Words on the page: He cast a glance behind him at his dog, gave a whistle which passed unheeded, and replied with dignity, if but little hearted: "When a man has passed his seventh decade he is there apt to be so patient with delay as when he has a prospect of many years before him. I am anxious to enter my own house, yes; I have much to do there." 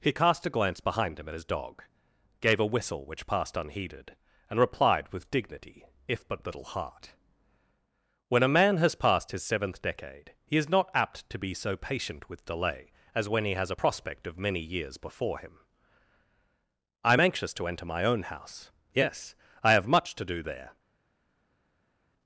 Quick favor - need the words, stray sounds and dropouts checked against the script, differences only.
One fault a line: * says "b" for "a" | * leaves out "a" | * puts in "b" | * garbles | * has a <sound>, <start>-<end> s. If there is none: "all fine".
* says "heart" for "hearted"
* says "not" for "there"